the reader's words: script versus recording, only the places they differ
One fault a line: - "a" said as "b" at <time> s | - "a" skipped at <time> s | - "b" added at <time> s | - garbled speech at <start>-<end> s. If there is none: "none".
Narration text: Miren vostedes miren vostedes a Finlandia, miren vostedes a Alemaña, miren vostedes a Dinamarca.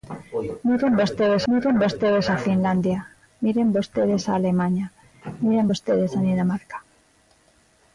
none